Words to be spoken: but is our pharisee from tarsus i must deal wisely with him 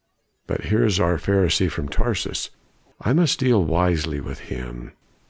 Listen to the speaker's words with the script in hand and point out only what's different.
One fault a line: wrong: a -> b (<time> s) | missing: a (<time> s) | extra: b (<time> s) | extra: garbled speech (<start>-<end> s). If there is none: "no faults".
extra: here (0.7 s)